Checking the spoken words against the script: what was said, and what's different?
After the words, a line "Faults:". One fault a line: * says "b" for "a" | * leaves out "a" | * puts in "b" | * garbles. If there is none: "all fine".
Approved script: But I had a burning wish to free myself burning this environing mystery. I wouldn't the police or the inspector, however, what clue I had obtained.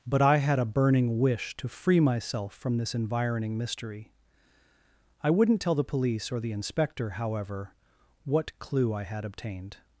But I had a burning wish to free myself from this environing mystery. I wouldn't tell the police or the inspector, however, what clue I had obtained.
Faults:
* says "from" for "burning"
* puts in "tell"